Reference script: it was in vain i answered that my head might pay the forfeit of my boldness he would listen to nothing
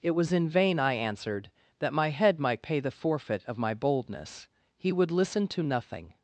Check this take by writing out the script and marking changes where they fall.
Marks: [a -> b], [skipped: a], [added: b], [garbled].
it was in vain i answered that my head might pay the forfeit of my boldness he would listen to nothing